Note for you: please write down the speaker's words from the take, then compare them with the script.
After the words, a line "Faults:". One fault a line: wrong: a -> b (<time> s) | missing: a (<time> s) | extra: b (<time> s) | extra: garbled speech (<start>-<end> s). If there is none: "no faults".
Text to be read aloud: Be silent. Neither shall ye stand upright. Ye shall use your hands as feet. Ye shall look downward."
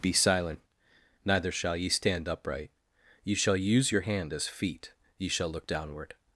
Be silent. Neither shall ye stand upright. Ye shall use your hand as feet. Ye shall look downward."
Faults:
wrong: hands -> hand (4.0 s)